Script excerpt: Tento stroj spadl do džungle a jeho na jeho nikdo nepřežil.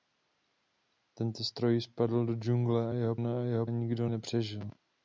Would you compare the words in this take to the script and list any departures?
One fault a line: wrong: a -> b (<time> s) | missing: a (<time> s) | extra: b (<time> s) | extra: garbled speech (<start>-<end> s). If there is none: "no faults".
no faults